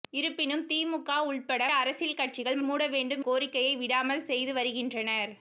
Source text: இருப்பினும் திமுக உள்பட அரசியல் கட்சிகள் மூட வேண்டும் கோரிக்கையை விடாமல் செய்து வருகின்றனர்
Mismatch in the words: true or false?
false